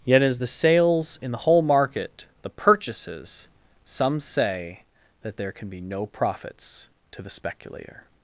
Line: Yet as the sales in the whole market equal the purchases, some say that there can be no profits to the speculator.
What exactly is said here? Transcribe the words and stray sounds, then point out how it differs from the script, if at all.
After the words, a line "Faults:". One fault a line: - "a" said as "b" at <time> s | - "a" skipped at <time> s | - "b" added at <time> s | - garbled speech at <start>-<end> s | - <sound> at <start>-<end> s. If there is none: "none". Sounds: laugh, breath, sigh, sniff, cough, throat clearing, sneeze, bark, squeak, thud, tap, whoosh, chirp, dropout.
Yet as the sales in the whole market the purchases, some say that there can be no profits to the speculator.
Faults:
- "equal" skipped at 2.3 s